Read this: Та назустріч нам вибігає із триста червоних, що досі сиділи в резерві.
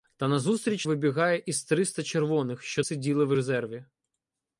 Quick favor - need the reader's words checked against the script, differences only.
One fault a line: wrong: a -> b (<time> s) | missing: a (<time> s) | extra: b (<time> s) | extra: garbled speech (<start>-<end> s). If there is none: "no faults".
missing: нам (0.9 s)
missing: досі (2.8 s)